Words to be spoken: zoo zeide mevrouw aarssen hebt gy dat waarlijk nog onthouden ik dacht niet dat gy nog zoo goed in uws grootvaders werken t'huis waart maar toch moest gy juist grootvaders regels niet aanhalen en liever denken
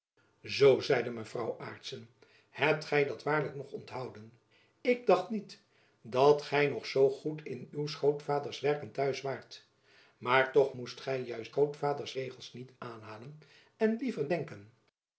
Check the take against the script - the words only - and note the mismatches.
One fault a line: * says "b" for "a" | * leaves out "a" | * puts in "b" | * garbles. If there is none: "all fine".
all fine